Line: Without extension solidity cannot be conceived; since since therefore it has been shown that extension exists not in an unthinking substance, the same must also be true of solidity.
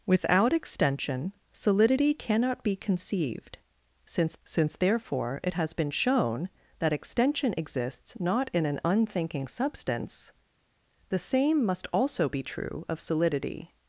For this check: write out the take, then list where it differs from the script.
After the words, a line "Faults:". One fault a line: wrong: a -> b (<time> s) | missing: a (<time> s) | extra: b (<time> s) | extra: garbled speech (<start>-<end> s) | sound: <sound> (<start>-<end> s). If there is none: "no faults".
Without extension solidity cannot be conceived; since since therefore it has been shown that extension exists not in an unthinking substance, the same must also be true of solidity.
Faults:
no faults